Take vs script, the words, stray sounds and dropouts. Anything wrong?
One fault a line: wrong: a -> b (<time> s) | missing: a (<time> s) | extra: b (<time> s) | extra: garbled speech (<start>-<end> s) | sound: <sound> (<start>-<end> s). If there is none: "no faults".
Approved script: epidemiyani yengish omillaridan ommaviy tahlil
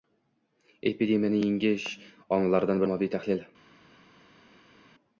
no faults